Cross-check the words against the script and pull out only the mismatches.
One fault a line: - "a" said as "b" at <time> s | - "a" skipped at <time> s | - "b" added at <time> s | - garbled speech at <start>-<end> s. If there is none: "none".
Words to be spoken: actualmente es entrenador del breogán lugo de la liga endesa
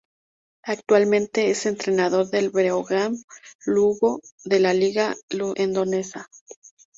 none